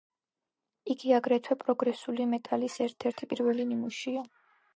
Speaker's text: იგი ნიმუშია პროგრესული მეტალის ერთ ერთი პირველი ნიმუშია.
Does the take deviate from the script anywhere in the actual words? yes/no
yes